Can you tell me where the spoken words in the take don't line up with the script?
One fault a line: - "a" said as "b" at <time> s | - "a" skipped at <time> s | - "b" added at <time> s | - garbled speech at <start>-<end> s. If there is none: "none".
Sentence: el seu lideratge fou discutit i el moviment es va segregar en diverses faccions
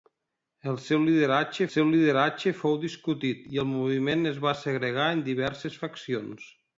- "seu lideratge" added at 1.7 s